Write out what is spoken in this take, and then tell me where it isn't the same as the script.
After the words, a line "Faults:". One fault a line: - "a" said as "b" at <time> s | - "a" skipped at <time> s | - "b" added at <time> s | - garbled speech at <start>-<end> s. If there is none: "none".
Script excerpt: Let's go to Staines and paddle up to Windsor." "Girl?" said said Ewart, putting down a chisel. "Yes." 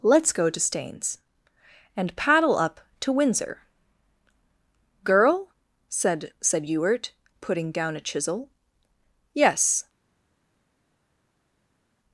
Let's go to Staines and paddle up to Windsor." "Girl?" said said Ewart, putting down a chisel. "Yes."
Faults:
none